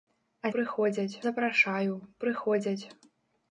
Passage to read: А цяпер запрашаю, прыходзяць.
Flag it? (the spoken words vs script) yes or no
yes